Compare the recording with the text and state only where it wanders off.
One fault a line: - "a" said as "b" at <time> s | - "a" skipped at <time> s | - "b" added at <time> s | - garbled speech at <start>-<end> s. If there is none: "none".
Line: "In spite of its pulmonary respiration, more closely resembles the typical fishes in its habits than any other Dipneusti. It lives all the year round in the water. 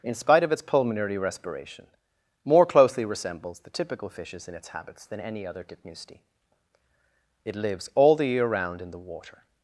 none